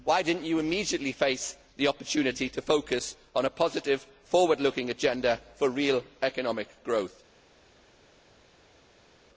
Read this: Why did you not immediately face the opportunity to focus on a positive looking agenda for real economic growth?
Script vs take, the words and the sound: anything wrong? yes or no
yes